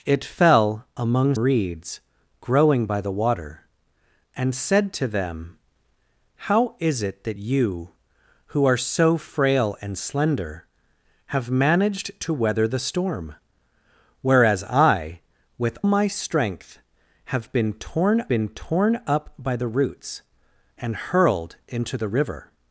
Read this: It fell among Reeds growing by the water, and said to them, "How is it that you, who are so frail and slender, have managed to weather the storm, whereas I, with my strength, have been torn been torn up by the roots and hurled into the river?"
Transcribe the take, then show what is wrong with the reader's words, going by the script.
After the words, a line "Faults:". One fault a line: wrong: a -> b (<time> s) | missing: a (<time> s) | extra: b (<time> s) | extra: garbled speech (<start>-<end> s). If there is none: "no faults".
It fell among Reeds growing by the water, and said to them, "How is it that you, who are so frail and slender, have managed to weather the storm, whereas I, with my strength, have been torn been torn up by the roots and hurled into the river?"
Faults:
no faults